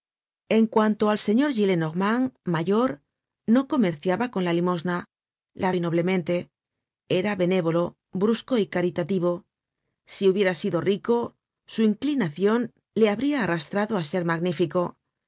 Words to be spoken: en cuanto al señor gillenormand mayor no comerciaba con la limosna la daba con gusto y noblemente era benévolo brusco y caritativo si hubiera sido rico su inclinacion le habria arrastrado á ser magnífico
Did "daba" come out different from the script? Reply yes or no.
yes